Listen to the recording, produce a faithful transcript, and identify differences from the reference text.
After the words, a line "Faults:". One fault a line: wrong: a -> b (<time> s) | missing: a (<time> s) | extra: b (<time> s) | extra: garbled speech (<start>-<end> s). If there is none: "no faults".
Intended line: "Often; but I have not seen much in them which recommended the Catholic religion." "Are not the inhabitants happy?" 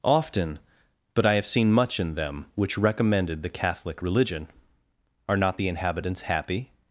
"Often; but I have seen much in them which recommended the Catholic religion." "Are not the inhabitants happy?"
Faults:
missing: not (1.4 s)